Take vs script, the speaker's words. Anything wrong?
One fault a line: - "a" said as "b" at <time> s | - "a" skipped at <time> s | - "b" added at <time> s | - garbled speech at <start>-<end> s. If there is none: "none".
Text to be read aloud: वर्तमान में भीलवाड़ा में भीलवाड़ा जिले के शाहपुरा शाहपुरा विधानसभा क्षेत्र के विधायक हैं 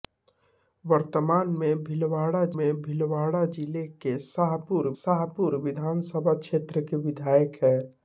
none